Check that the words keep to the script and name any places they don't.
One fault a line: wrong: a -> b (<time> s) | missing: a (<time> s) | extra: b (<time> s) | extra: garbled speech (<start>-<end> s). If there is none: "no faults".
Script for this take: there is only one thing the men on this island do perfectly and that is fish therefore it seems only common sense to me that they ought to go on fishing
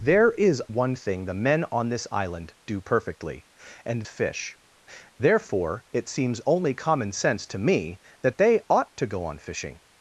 missing: only (0.6 s)
missing: that is (4.0 s)